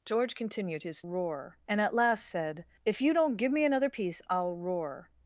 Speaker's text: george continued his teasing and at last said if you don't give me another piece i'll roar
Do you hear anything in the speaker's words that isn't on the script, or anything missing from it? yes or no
yes